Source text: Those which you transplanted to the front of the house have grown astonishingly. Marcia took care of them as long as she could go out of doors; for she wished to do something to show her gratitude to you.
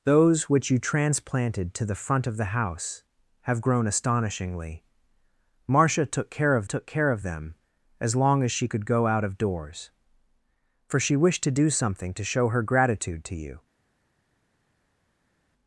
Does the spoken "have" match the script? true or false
true